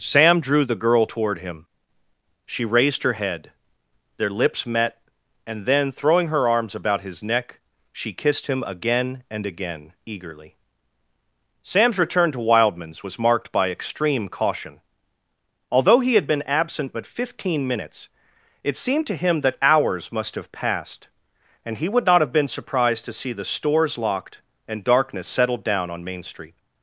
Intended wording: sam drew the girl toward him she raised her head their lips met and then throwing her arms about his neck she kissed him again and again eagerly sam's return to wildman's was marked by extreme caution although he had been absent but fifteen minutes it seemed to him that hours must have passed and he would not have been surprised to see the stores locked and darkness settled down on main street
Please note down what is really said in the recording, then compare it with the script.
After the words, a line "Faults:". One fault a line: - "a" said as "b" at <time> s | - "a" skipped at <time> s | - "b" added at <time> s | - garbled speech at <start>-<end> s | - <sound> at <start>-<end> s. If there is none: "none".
sam drew the girl toward him she raised her head their lips met and then throwing her arms about his neck she kissed him again and again eagerly sam's return to wildman's was marked by extreme caution although he had been absent but fifteen minutes it seemed to him that hours must have passed and he would not have been surprised to see the stores locked and darkness settled down on main street
Faults:
none